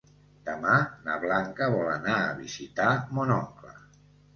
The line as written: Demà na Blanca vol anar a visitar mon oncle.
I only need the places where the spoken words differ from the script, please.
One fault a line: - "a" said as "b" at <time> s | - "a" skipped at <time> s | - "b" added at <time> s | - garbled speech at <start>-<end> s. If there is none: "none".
none